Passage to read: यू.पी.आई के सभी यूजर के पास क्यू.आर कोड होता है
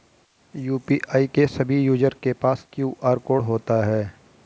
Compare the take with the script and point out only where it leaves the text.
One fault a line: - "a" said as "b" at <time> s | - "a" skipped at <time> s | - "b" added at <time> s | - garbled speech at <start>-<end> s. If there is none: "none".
none